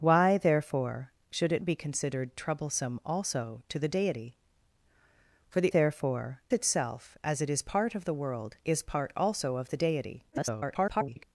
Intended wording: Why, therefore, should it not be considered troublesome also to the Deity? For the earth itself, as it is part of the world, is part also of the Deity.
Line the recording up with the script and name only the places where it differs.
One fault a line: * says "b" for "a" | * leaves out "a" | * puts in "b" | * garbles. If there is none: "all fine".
* leaves out "not"
* says "therefore" for "earth"
* garbles